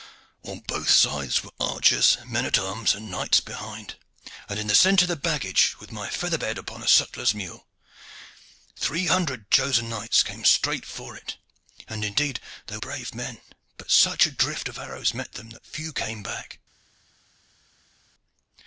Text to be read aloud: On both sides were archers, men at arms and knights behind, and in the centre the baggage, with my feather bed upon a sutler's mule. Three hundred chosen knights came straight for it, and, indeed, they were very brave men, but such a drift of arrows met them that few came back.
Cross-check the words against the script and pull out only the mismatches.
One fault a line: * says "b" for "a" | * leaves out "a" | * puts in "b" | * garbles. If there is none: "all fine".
* leaves out "were very"